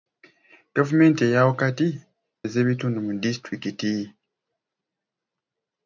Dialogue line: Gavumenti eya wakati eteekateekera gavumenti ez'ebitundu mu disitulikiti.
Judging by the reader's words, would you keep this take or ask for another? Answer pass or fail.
fail